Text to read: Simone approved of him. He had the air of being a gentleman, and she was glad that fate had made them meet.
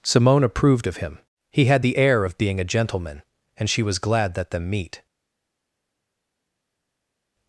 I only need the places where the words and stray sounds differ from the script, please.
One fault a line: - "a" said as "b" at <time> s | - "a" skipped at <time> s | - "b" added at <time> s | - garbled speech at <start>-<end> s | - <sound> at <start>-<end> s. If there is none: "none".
- "fate had made" skipped at 4.5 s